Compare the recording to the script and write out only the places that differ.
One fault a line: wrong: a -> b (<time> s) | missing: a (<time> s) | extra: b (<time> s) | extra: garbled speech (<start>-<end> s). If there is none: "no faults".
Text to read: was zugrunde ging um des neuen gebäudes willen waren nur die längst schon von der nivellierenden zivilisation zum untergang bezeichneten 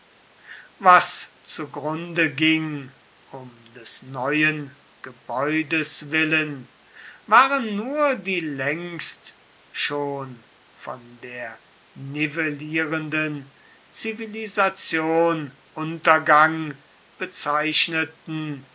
missing: zum (15.6 s)